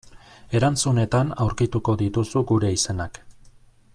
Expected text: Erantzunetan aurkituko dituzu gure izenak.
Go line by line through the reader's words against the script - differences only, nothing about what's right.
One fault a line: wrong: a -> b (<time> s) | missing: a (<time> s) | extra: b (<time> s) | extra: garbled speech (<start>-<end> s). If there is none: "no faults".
no faults